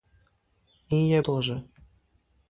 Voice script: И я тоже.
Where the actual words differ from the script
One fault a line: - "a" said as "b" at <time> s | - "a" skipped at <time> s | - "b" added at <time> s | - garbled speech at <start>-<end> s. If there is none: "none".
none